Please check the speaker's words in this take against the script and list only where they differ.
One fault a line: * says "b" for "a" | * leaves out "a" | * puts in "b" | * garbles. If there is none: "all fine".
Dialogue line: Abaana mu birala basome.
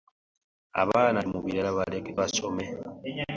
all fine